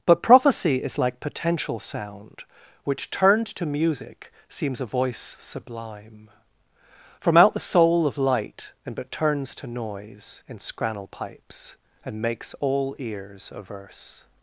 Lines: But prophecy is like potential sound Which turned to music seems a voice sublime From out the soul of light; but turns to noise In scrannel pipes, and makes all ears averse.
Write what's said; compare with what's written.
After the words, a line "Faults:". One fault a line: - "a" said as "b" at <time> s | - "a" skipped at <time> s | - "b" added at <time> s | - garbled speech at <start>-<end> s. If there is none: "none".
But prophecy is like potential sound Which turned to music seems a voice sublime From out the soul of light; and but turns to noise In scrannel pipes, and makes all ears averse.
Faults:
- "and" added at 8.8 s